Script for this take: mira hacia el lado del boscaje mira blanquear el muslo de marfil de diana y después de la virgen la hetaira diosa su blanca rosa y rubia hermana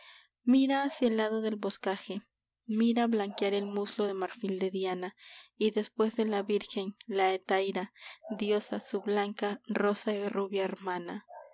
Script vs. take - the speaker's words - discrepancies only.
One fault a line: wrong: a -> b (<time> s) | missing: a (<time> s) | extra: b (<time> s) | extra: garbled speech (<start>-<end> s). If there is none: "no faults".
no faults